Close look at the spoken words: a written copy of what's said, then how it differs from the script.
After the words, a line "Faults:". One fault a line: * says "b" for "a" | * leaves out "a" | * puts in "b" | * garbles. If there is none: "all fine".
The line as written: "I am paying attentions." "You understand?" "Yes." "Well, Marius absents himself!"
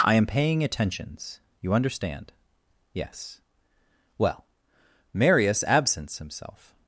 "I am paying attentions." "You understand?" "Yes." "Well, Marius absents himself!"
Faults:
all fine